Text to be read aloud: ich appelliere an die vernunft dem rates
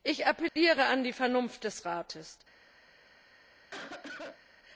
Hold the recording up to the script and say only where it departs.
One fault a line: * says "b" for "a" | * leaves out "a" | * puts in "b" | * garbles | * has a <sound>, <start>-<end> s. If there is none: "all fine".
* has a dropout, 0.5-0.6 s
* says "des" for "dem"
* has a cough, 3.7-4.4 s